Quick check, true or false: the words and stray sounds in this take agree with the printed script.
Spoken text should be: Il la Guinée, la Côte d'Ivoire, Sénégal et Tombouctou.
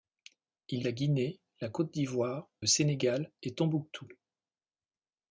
true